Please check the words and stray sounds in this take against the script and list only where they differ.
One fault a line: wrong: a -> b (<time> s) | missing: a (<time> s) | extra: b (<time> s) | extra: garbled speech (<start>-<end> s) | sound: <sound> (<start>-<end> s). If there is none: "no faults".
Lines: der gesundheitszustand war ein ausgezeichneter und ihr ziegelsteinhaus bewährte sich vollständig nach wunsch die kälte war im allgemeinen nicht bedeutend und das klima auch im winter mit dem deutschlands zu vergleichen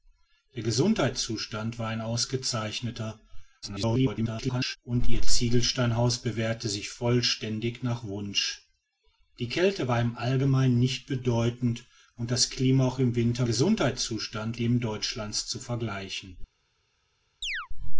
extra: garbled speech (3.6-4.8 s)
wrong: mit -> gesundheitszustand (13.4 s)
sound: chirp (17.4-17.7 s)